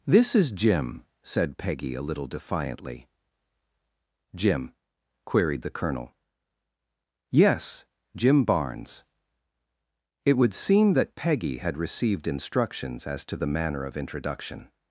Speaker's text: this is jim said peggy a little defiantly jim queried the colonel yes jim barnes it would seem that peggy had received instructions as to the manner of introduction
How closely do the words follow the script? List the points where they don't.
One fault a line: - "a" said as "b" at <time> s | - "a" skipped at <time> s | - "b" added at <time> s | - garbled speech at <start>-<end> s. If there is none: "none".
none